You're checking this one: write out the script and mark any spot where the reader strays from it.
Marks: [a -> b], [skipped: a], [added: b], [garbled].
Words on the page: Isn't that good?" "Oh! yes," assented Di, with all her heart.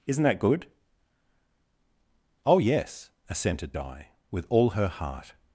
Isn't that good?" "Oh! yes," assented Di, with all her heart.